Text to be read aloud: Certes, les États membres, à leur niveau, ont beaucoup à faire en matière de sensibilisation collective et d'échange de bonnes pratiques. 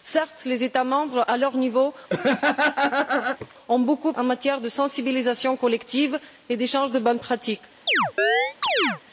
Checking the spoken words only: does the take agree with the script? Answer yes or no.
no